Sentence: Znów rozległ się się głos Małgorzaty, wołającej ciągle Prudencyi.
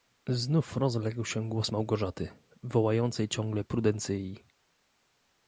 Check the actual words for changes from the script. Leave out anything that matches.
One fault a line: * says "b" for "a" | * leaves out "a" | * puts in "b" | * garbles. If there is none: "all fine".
* leaves out "się"